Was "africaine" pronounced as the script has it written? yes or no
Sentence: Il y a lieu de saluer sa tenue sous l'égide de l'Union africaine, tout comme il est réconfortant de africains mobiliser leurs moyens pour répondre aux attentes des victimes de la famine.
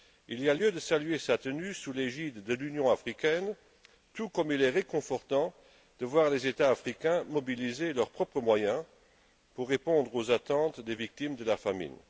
yes